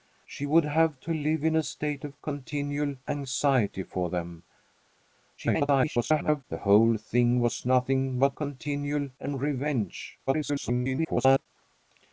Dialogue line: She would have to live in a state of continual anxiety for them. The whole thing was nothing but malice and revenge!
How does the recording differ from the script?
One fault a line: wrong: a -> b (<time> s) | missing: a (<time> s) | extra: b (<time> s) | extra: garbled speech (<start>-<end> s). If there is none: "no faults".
extra: garbled speech (5.4-6.4 s)
wrong: malice -> continual (8.3 s)
extra: garbled speech (10.3-11.5 s)